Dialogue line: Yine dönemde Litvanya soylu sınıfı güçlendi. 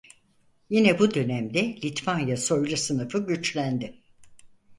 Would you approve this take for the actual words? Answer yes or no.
no